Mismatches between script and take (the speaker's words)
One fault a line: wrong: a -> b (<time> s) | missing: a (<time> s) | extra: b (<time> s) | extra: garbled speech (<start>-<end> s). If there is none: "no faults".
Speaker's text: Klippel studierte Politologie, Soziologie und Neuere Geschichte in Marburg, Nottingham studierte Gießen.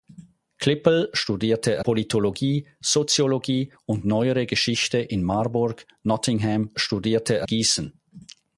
no faults